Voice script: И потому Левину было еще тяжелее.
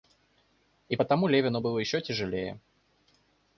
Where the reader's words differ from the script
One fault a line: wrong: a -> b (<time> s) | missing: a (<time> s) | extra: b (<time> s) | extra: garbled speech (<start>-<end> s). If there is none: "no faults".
no faults